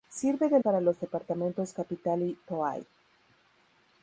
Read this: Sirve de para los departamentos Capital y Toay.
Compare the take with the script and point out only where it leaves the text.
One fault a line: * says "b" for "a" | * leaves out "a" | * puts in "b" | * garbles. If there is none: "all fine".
all fine